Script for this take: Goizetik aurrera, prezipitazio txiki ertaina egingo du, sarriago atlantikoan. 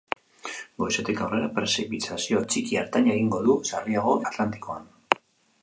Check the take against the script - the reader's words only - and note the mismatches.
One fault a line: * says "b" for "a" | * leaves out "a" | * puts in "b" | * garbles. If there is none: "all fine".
all fine